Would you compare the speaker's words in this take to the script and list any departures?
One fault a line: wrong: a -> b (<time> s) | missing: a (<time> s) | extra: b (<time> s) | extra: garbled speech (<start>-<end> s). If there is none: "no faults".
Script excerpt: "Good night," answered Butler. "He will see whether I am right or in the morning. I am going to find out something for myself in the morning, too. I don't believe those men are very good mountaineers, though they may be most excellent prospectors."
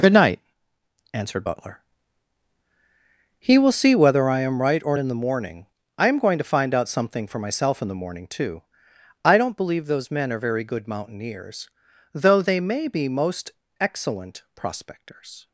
no faults